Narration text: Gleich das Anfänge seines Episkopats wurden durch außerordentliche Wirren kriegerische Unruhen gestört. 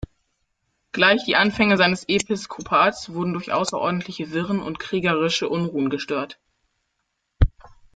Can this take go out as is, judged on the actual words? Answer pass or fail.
fail